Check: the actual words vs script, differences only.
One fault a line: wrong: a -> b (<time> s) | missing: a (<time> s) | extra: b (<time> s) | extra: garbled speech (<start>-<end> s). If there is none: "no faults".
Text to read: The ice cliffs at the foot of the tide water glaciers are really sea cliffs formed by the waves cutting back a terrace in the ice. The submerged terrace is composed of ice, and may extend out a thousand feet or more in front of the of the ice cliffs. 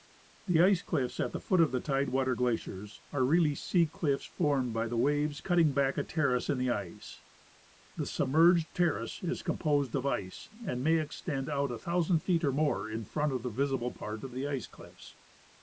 extra: visible part (13.5 s)